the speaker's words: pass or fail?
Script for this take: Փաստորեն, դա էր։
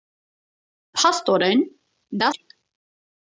pass